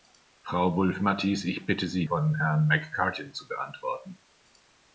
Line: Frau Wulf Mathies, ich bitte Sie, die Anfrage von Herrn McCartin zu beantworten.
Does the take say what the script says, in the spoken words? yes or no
no